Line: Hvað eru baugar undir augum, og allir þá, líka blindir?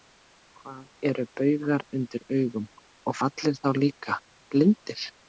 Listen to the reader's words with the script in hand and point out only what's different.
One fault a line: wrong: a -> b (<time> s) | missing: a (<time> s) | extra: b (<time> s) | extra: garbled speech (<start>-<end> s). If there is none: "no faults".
no faults